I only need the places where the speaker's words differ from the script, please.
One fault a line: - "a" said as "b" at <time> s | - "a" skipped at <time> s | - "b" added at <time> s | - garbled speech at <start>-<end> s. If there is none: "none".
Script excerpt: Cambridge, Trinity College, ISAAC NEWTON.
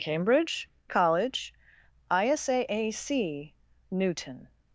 - "Trinity" skipped at 0.7 s